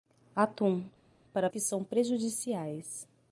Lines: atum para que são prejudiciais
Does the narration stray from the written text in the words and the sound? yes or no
no